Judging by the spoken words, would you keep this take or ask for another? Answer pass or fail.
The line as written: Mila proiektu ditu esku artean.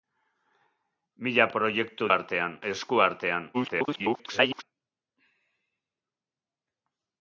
fail